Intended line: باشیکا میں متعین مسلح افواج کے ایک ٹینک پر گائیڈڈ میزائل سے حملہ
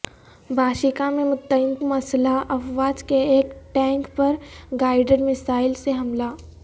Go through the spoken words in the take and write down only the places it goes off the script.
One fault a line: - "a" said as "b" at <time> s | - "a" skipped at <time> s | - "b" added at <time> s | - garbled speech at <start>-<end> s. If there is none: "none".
none